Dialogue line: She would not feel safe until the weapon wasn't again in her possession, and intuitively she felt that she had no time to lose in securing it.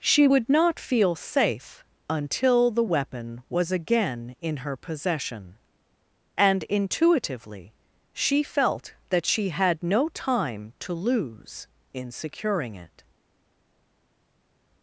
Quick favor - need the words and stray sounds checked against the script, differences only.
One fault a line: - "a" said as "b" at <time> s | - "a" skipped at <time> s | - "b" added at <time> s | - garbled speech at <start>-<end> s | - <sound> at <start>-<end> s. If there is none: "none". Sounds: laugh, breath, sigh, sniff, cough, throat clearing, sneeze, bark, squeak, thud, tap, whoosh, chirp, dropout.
- "wasn't" said as "was" at 3.5 s